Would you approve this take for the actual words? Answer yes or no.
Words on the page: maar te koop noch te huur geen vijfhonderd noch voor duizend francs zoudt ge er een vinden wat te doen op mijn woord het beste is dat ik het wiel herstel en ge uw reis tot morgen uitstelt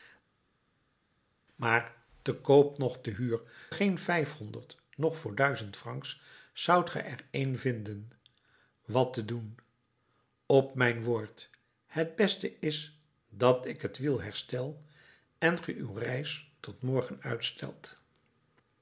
yes